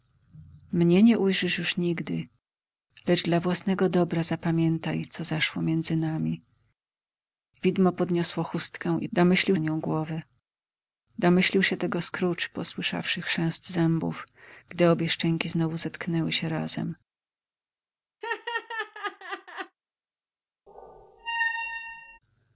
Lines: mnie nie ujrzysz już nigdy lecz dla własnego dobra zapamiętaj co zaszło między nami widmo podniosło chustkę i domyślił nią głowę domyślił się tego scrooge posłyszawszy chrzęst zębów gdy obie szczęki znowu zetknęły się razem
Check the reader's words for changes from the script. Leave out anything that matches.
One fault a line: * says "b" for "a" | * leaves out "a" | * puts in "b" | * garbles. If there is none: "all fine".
all fine